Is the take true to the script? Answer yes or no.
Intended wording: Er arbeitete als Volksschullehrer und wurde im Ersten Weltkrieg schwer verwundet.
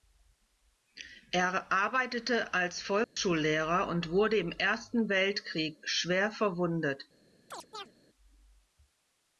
yes